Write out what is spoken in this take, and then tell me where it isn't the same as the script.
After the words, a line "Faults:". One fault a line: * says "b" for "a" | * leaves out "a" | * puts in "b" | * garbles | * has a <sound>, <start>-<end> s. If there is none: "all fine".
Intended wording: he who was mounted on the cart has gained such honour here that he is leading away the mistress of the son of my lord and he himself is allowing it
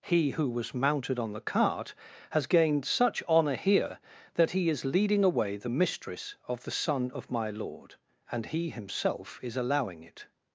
he who was mounted on the cart has gained such honour here that he is leading away the mistress of the son of my lord and he himself is allowing it
Faults:
all fine